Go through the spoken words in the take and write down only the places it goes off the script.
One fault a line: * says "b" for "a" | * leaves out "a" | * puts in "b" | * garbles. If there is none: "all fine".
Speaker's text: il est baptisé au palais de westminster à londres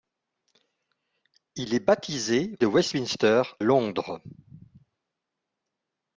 * leaves out "au palais"
* leaves out "à"